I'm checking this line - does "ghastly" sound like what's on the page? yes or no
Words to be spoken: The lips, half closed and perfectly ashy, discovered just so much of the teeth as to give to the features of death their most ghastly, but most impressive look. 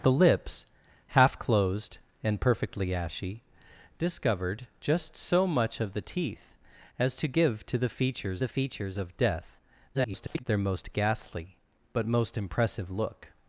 yes